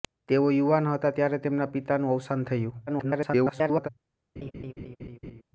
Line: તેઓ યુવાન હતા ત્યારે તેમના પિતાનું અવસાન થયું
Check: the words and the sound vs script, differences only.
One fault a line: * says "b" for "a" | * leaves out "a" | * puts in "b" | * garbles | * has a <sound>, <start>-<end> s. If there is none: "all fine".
* garbles
* has a laugh, 4.4-5.4 s